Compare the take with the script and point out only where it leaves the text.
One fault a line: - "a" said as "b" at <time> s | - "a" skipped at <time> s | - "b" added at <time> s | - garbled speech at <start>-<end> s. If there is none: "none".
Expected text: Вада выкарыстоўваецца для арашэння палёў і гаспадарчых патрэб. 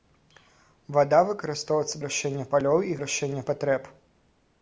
- "для" skipped at 2.0 s
- "гаспадарчых" said as "арашэння" at 3.0 s